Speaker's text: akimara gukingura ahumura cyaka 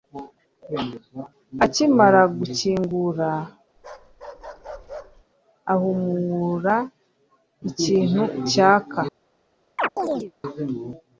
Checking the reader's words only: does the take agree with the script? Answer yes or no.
no